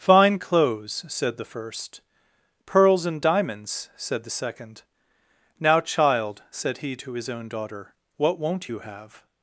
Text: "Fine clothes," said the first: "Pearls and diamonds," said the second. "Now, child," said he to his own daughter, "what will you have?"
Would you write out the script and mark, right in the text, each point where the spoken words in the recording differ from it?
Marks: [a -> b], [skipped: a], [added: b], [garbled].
"Fine clothes," said the first: "Pearls and diamonds," said the second. "Now, child," said he to his own daughter, "what [will -> won't] you have?"